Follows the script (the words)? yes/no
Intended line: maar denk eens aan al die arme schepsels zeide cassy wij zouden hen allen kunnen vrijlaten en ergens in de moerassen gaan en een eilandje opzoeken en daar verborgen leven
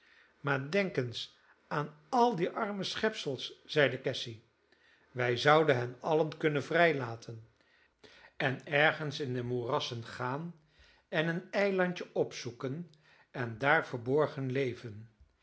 yes